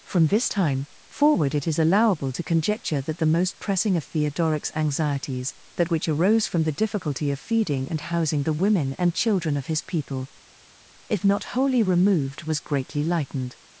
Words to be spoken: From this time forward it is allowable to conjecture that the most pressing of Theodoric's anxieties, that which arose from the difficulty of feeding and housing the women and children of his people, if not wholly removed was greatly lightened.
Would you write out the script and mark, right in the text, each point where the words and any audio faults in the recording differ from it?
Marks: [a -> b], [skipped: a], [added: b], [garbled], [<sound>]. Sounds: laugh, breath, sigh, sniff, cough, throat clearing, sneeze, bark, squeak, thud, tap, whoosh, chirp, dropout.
From this time forward it is allowable to conjecture that the most pressing of Theodoric's anxieties, that which arose from the difficulty of feeding and housing the women and children of his people, if not wholly removed was greatly lightened.